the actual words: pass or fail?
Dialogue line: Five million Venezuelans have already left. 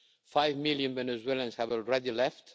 pass